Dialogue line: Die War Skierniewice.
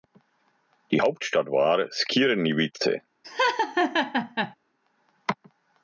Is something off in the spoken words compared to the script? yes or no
yes